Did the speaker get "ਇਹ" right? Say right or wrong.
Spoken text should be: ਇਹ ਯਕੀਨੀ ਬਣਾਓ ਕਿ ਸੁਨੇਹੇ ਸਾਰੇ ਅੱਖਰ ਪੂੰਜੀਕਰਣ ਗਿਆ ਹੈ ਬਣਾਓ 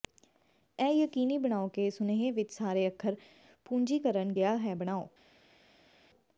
right